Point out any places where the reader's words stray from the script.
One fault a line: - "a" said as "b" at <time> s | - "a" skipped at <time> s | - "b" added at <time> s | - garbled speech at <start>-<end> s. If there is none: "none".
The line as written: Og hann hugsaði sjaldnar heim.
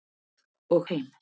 - "hann hugsaði sjaldnar" skipped at 0.9 s